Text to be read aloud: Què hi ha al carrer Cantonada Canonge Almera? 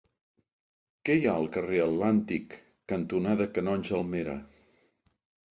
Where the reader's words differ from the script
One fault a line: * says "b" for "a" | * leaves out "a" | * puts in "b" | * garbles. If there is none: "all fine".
* puts in "Atlàntic"